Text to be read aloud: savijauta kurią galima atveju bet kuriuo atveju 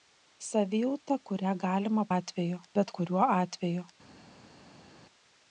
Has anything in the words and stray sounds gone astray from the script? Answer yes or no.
no